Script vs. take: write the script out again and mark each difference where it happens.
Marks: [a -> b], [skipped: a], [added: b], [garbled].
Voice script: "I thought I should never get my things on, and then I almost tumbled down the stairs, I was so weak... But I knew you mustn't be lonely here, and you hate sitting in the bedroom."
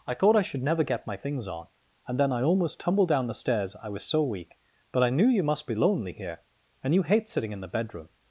"I thought I should never get my things on, and then I almost tumbled down the stairs, I was so weak... But I knew you [mustn't -> must] be lonely here, and you hate sitting in the bedroom."